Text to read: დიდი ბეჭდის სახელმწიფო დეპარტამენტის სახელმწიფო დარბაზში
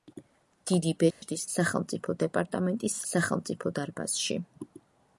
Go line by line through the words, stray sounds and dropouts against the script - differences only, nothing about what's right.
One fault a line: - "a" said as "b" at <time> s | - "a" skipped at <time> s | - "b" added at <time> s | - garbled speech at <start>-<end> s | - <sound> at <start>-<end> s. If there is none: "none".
- dropout at 1.1-1.2 s